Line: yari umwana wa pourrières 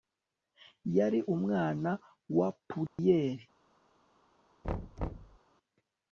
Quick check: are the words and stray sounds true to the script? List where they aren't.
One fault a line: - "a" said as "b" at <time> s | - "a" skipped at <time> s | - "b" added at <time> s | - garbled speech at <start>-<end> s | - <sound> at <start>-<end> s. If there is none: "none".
- dropout at 2.9-3.0 s
- thud at 4.6-5.4 s